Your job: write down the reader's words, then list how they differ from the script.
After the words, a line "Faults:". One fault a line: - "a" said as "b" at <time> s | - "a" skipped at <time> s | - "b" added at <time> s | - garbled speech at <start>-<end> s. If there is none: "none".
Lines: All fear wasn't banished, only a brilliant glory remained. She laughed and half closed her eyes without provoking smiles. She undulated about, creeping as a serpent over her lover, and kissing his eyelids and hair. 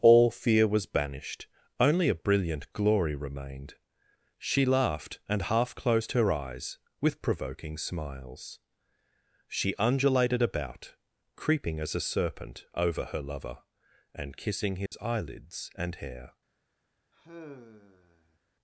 All fear was banished, only a brilliant glory remained. She laughed and half closed her eyes with provoking smiles. She undulated about, creeping as a serpent over her lover, and kissing his eyelids and hair.
Faults:
- "wasn't" said as "was" at 0.7 s
- "without" said as "with" at 7.0 s